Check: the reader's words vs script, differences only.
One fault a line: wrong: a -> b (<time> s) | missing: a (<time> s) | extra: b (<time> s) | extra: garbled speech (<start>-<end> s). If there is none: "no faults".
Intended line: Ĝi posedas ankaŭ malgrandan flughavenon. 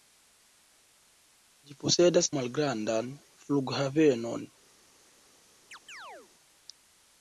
missing: ankaŭ (2.3 s)